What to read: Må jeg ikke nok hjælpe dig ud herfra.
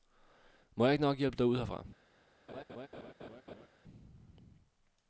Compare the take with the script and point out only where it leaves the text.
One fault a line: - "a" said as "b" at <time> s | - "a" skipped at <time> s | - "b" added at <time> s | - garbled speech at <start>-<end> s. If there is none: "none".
none